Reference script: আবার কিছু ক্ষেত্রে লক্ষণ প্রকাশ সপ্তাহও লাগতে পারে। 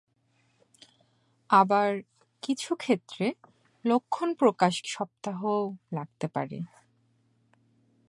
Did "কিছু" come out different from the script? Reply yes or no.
no